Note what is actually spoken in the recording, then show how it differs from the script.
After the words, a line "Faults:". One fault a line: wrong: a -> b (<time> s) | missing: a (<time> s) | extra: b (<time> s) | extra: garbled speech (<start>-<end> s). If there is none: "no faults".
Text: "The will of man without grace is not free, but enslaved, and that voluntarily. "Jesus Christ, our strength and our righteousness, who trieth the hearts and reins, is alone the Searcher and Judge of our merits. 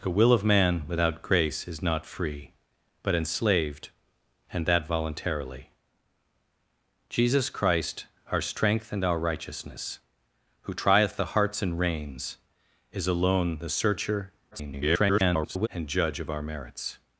"The will of man without grace is not free, but enslaved, and that voluntarily. "Jesus Christ, our strength and our righteousness, who trieth the hearts and reins, is alone the Searcher [garbled] and Judge of our merits.
Faults:
extra: garbled speech (14.5-15.7 s)